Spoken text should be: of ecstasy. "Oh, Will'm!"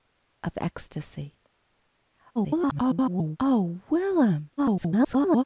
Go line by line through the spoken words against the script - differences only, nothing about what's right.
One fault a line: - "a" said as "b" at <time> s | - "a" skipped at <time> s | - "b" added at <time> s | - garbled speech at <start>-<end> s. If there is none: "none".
- garbled speech at 2.4-3.4 s
- garbled speech at 4.6-5.4 s